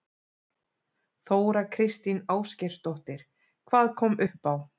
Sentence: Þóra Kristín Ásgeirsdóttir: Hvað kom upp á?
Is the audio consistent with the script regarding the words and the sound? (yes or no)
yes